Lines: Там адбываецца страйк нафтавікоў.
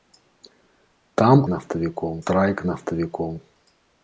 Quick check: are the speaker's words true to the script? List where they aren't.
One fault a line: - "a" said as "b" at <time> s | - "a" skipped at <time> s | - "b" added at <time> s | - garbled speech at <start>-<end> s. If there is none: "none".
- "адбываецца" said as "нафтавікоў" at 1.5 s